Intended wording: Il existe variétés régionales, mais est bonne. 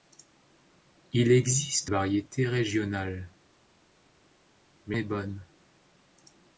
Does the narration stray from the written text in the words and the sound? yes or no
no